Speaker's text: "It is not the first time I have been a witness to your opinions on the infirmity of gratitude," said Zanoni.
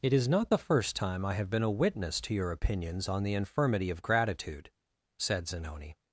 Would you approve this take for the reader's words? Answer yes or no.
yes